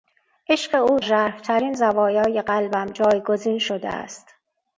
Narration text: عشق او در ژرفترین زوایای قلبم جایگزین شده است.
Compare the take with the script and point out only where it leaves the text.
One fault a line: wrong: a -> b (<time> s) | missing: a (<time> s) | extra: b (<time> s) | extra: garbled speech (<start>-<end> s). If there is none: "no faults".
missing: در (1.0 s)